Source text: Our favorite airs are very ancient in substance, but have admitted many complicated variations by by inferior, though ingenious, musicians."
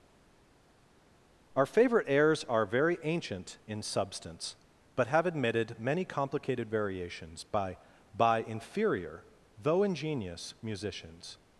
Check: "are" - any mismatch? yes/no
no